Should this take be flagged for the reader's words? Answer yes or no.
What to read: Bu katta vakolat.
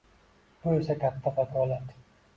yes